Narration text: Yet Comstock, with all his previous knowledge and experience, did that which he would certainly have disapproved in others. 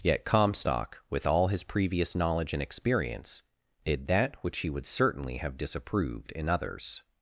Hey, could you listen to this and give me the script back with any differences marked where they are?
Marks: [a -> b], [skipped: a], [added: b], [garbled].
Yet Comstock, with all his previous knowledge and experience, did that which he would certainly have disapproved in others.